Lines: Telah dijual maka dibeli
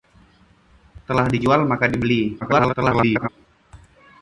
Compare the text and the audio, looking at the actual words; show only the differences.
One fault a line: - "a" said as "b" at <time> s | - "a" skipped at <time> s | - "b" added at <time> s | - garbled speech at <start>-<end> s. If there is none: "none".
- garbled speech at 2.4-3.3 s